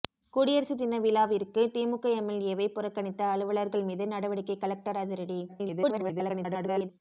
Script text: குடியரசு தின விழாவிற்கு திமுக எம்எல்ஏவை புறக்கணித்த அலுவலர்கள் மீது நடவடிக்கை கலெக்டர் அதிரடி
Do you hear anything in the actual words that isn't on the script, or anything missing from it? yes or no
yes